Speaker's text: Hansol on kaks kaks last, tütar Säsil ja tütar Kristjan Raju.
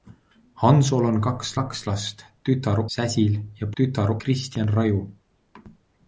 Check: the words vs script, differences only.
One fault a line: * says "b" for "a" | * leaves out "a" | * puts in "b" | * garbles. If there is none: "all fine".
all fine